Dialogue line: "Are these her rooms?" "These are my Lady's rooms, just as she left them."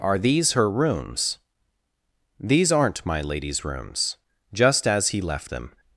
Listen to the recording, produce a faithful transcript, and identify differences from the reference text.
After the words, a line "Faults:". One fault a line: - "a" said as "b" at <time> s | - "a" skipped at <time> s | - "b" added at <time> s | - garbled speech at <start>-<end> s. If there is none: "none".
"Are these her rooms?" "These aren't my Lady's rooms, just as he left them."
Faults:
- "are" said as "aren't" at 2.7 s
- "she" said as "he" at 5.1 s